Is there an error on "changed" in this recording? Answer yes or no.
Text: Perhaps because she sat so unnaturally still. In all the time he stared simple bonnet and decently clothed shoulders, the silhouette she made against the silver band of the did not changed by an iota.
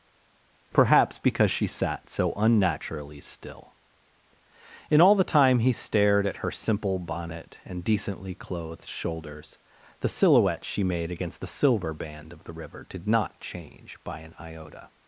yes